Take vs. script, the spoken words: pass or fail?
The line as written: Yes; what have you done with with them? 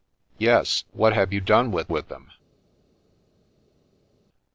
pass